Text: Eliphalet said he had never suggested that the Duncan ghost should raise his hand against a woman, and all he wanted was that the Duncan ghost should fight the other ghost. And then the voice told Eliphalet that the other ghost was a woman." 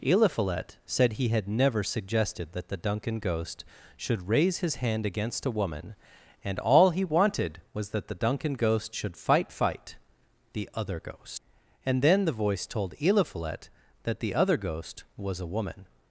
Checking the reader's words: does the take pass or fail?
fail